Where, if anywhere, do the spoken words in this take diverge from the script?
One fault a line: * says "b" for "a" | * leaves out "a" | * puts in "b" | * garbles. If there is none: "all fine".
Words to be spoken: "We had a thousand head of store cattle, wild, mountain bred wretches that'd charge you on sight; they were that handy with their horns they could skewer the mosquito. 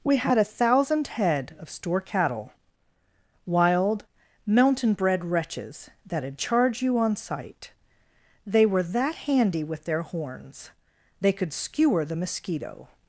all fine